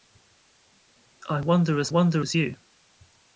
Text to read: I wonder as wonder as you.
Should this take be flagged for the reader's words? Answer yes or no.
no